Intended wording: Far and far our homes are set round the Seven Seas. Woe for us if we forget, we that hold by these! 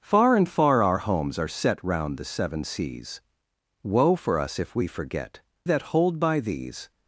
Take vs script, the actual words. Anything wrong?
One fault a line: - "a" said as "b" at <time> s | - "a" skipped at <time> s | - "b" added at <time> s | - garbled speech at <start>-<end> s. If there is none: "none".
- "we" skipped at 5.4 s